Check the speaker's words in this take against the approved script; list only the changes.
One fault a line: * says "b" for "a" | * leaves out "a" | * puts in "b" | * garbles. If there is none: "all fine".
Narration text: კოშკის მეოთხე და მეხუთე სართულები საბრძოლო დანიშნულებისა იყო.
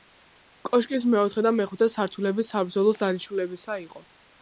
all fine